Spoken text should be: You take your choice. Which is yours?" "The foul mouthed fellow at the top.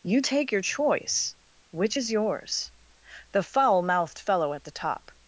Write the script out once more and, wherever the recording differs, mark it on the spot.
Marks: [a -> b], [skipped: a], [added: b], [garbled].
You take your choice. Which is yours?" "The foul mouthed fellow at the top.